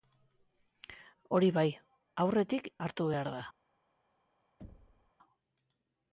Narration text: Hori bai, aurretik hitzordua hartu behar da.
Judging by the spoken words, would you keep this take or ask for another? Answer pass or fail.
fail